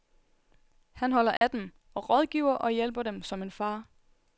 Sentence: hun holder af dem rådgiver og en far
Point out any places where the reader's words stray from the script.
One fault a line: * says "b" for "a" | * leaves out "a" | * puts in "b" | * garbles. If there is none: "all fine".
* says "han" for "hun"
* puts in "og"
* puts in "hjælper dem som"